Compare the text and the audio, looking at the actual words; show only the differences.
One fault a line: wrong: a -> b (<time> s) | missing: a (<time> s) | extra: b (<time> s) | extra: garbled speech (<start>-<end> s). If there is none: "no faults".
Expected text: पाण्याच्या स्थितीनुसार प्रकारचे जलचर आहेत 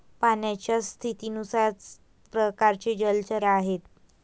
no faults